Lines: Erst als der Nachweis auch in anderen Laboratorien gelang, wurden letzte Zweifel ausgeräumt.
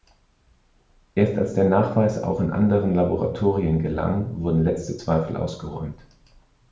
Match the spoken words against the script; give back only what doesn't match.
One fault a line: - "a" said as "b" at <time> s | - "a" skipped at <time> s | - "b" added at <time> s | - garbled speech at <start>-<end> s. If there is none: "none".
none